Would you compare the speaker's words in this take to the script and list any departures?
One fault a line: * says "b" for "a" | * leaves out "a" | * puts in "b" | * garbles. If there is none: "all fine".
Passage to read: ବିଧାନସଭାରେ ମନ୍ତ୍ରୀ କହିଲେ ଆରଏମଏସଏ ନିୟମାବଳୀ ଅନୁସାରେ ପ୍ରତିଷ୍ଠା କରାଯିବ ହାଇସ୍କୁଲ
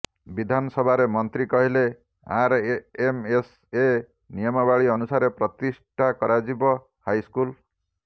all fine